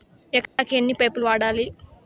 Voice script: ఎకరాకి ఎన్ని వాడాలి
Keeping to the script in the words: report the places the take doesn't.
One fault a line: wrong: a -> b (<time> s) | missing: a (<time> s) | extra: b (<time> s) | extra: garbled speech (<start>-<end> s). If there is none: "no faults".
extra: పైపులు (0.9 s)